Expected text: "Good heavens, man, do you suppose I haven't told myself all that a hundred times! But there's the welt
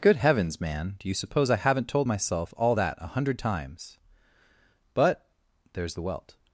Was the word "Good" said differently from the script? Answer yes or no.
no